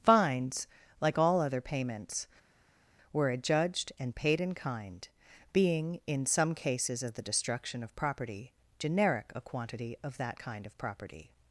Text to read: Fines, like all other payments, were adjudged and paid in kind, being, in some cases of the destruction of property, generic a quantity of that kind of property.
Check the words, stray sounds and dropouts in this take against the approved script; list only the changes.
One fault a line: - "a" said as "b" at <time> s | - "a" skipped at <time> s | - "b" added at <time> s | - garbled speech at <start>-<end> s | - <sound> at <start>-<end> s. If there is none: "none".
none